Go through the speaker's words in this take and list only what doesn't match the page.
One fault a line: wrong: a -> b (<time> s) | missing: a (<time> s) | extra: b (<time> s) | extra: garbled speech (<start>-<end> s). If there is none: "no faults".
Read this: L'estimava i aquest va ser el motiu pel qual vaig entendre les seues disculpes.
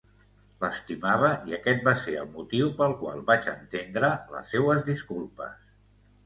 no faults